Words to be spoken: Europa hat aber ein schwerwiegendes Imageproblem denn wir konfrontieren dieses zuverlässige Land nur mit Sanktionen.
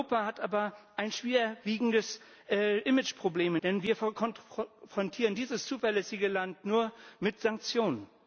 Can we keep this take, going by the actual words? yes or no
yes